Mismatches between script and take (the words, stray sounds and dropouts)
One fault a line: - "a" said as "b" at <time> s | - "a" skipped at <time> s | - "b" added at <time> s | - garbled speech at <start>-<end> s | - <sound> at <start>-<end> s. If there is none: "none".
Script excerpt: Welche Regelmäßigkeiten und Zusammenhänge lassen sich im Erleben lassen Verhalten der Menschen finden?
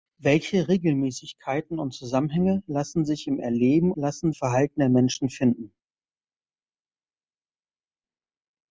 none